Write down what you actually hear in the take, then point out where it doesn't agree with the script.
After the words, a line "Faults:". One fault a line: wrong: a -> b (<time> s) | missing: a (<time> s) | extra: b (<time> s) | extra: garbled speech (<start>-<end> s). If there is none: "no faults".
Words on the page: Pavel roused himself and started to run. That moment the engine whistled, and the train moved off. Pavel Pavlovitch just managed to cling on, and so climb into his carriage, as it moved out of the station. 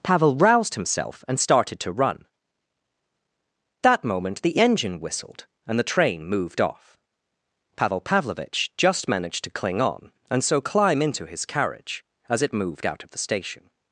Pavel roused himself and started to run. That moment the engine whistled, and the train moved off. Pavel Pavlovitch just managed to cling on, and so climb into his carriage, as it moved out of the station.
Faults:
no faults